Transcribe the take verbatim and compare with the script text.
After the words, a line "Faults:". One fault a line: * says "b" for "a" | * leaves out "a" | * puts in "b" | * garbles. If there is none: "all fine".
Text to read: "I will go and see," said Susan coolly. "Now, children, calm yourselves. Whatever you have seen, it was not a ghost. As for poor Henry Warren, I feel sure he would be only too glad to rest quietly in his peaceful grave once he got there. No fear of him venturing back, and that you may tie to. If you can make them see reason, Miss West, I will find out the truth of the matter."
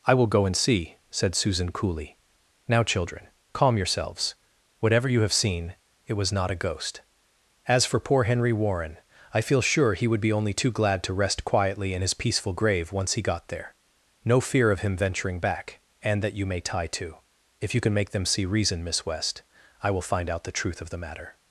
"I will go and see," said Susan coolly. "Now, children, calm yourselves. Whatever you have seen, it was not a ghost. As for poor Henry Warren, I feel sure he would be only too glad to rest quietly in his peaceful grave once he got there. No fear of him venturing back, and that you may tie to. If you can make them see reason, Miss West, I will find out the truth of the matter."
Faults:
all fine